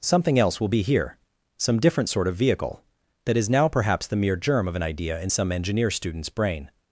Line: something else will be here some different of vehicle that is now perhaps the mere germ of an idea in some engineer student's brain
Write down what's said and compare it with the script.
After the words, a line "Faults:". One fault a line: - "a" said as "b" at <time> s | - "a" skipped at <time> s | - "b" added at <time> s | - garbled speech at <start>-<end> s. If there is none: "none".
something else will be here some different sort of vehicle that is now perhaps the mere germ of an idea in some engineer student's brain
Faults:
- "sort" added at 2.1 s